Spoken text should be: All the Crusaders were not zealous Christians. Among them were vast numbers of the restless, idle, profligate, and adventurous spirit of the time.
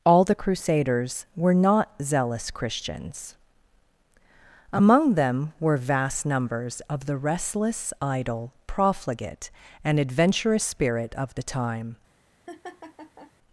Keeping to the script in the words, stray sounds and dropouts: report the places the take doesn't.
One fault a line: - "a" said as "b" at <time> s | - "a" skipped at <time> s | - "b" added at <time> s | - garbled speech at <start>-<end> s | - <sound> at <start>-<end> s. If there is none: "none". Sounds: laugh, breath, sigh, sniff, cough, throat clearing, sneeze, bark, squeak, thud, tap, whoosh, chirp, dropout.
- laugh at 12.5-13.3 s